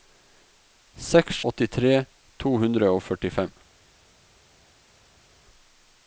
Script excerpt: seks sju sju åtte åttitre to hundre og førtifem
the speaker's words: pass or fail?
fail